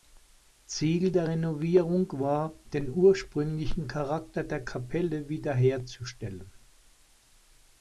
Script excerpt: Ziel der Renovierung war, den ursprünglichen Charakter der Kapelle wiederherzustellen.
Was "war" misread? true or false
false